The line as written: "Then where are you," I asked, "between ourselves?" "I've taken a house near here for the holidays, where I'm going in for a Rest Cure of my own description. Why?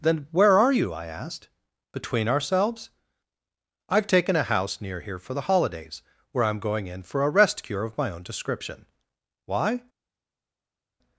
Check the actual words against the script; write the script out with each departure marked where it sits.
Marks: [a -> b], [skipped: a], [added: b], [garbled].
"Then where are you," I asked, "between ourselves?" "I've taken a house near here for the holidays, where I'm going in for a Rest Cure of my own description. Why?